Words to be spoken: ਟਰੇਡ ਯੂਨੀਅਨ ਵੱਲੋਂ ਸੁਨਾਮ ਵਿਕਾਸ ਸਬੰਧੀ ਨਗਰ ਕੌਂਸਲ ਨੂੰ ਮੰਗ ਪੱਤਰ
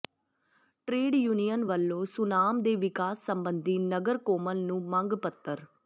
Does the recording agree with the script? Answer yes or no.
no